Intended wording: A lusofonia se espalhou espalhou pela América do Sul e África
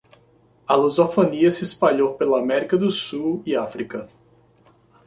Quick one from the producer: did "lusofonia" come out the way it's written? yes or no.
yes